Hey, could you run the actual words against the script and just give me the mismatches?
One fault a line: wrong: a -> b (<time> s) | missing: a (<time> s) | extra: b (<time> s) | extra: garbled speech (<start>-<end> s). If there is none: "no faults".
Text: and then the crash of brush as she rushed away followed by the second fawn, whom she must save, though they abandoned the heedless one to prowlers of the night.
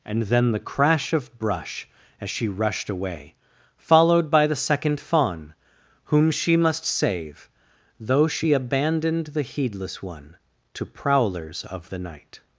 wrong: they -> she (8.3 s)